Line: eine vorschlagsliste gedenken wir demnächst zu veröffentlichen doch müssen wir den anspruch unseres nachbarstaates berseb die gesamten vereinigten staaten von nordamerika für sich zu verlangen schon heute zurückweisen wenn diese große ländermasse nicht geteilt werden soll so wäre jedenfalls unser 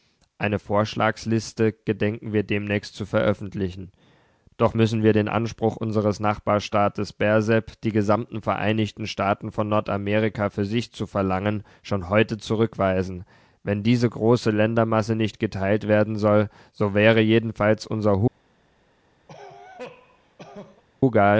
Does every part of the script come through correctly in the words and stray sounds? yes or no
no